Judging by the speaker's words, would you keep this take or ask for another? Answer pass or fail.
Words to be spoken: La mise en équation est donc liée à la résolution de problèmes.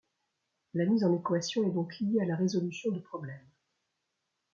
pass